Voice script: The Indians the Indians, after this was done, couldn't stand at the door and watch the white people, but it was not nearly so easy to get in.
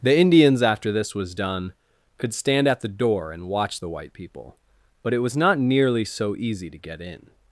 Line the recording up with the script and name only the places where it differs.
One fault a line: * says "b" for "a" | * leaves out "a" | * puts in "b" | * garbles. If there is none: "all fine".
* leaves out "the Indians"
* says "could" for "couldn't"